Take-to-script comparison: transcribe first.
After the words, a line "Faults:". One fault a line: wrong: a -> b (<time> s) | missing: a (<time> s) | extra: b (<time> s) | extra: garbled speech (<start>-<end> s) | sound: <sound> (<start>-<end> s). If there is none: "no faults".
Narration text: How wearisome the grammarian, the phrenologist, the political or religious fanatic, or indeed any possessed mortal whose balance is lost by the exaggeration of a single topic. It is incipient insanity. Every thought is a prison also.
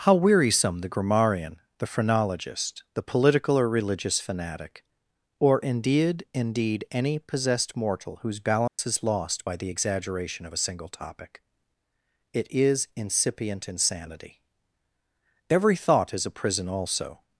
How wearisome the grammarian, the phrenologist, the political or religious fanatic, or indeed indeed any possessed mortal whose balance is lost by the exaggeration of a single topic. It is incipient insanity. Every thought is a prison also.
Faults:
extra: indeed (6.3 s)
sound: dropout (8.7-8.8 s)